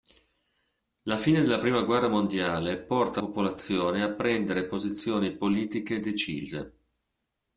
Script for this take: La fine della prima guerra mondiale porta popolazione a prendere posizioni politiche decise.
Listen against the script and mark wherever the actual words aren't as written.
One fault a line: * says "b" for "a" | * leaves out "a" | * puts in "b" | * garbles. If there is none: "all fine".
all fine